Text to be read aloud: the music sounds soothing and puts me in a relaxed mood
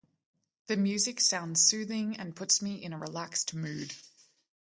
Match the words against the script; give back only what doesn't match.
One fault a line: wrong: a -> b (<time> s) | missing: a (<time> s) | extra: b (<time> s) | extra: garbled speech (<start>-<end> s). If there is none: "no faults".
no faults